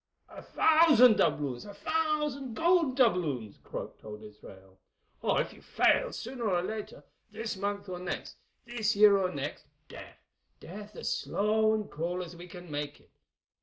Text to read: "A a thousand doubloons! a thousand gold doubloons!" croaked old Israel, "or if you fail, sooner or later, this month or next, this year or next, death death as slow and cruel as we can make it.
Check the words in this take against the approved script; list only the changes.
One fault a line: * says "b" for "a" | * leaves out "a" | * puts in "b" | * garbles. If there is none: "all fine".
* leaves out "a"